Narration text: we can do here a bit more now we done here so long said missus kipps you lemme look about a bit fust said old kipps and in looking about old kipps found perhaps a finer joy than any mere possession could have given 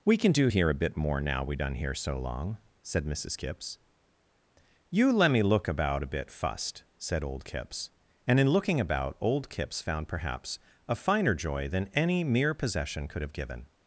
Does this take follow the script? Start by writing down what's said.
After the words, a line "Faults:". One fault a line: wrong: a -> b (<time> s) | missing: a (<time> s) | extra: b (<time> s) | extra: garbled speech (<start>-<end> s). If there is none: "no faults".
we can do here a bit more now we done here so long said missus kipps you lemme look about a bit fust said old kipps and in looking about old kipps found perhaps a finer joy than any mere possession could have given
Faults:
no faults